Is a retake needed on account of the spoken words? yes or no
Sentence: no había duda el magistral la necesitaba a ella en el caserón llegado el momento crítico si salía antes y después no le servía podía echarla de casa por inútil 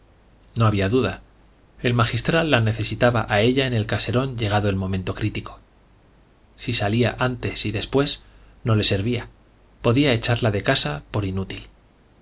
no